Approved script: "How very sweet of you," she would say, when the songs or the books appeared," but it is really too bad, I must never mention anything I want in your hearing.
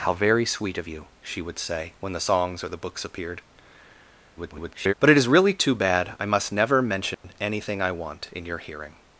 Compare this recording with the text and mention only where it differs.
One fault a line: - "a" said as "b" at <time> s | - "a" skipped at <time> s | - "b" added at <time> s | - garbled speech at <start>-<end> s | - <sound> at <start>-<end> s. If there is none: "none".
- garbled speech at 4.4-4.9 s
- dropout at 7.1-7.2 s